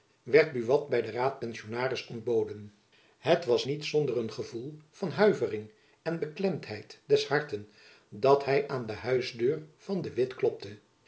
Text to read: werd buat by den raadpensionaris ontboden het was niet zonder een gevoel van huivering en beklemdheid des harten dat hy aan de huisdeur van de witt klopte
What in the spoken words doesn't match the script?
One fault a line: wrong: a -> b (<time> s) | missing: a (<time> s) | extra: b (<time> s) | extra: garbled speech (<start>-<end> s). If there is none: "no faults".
no faults